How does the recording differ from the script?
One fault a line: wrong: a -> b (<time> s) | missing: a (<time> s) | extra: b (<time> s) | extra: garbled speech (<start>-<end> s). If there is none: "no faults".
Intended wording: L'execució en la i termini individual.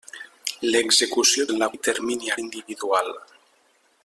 no faults